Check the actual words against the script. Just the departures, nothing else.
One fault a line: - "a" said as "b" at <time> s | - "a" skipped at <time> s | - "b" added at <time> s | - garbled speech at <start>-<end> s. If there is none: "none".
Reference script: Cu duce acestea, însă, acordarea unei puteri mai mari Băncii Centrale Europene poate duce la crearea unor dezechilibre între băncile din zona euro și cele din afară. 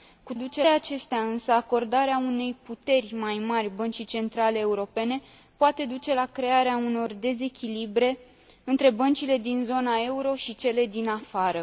none